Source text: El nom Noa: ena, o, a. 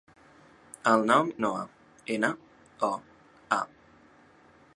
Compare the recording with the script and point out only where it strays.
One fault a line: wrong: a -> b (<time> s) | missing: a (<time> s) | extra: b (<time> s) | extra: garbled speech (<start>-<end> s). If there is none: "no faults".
no faults